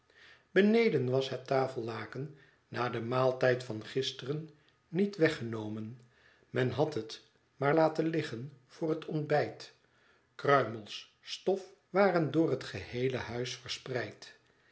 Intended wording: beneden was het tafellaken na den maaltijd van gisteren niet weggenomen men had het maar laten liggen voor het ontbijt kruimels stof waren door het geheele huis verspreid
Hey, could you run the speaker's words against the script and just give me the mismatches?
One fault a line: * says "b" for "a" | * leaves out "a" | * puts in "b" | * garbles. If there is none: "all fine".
all fine